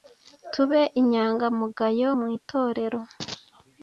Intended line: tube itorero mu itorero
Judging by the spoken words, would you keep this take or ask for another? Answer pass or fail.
fail